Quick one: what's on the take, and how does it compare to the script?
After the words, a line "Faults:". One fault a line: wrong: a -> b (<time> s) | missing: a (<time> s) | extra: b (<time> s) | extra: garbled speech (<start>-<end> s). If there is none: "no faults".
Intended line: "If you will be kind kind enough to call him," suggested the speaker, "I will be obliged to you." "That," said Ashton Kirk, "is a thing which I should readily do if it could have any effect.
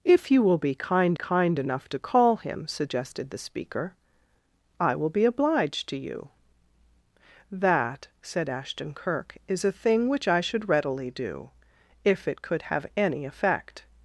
"If you will be kind kind enough to call him," suggested the speaker, "I will be obliged to you." "That," said Ashton Kirk, "is a thing which I should readily do if it could have any effect.
Faults:
no faults